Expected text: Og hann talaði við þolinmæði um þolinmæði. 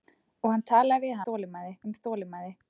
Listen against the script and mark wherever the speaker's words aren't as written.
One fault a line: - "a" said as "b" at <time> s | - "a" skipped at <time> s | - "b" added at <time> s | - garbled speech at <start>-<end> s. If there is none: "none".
none